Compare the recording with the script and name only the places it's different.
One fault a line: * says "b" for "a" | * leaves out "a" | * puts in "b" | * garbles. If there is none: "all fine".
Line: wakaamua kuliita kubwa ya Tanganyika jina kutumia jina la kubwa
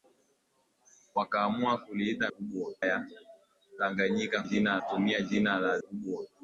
all fine